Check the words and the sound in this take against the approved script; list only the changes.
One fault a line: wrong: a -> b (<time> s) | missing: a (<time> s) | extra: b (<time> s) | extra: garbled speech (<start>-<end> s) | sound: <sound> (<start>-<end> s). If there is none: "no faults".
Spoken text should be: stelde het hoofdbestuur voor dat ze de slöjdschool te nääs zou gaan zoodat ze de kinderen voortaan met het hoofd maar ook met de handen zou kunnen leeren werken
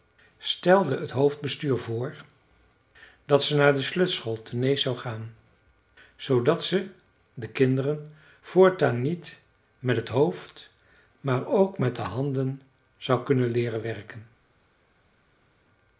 extra: naar (3.5 s)
extra: niet (9.0 s)